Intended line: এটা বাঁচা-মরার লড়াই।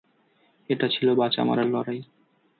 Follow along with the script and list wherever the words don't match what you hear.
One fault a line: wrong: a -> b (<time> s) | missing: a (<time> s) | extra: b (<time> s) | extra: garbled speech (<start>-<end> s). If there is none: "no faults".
extra: ছিল (0.9 s)